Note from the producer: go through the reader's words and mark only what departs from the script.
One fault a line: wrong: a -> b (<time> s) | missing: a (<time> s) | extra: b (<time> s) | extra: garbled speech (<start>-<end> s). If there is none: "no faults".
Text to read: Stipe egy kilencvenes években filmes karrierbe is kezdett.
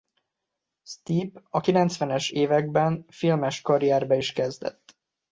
wrong: egy -> a (1.5 s)